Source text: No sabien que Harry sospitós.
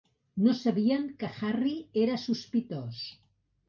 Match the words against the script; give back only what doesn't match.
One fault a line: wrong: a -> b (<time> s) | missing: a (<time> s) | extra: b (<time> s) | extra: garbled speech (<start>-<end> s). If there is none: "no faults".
extra: era (2.1 s)